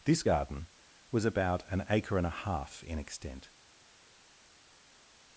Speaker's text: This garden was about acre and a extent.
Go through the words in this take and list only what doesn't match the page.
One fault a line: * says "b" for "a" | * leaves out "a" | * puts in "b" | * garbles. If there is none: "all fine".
* puts in "an"
* puts in "half in"